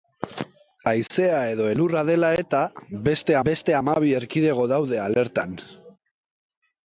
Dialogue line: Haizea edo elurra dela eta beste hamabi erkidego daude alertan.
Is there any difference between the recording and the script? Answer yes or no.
yes